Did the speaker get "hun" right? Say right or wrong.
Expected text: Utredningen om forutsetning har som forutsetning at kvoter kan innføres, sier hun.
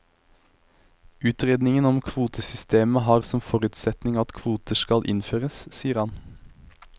wrong